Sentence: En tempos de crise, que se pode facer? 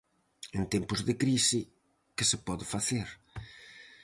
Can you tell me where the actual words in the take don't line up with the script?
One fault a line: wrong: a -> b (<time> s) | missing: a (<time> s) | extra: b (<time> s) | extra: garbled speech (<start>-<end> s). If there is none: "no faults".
no faults